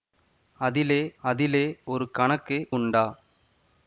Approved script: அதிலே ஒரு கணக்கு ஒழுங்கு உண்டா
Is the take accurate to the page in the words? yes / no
no